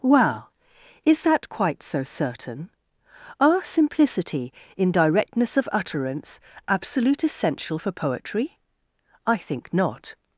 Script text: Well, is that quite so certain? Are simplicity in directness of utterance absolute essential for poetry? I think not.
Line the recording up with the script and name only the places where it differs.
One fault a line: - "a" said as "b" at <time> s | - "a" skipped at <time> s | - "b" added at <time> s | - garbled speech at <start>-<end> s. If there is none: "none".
none